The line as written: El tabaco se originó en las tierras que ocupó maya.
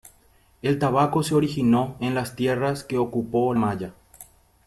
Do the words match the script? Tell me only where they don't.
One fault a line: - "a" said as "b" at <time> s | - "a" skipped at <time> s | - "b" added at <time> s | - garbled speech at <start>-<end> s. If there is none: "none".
none